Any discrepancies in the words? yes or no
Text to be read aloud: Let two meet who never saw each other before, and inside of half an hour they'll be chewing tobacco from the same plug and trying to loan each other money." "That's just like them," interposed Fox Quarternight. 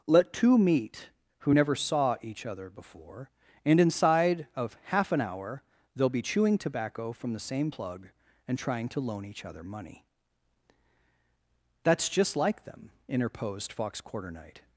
no